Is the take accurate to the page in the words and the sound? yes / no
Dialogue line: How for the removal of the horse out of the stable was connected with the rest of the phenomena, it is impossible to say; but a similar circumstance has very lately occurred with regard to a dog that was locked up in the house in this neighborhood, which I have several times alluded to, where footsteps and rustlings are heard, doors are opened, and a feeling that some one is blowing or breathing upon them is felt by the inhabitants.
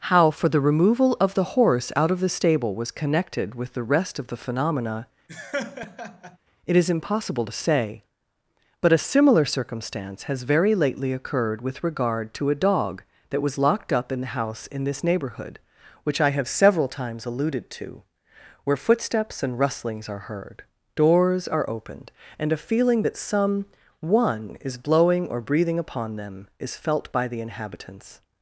no